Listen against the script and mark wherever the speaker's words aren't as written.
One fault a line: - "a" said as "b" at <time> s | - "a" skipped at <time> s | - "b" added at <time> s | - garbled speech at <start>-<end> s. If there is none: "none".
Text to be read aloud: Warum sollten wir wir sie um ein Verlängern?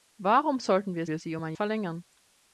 none